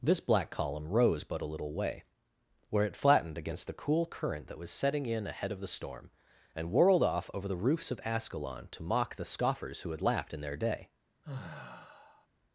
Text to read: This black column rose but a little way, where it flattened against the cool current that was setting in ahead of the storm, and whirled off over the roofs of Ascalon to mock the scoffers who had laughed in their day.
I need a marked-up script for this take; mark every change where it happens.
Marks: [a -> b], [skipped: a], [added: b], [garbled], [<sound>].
This black column rose but a little way, where it flattened against the cool current that was setting in ahead of the storm, and whirled off over the roofs of Ascalon to mock the scoffers who had laughed in their day. [sigh]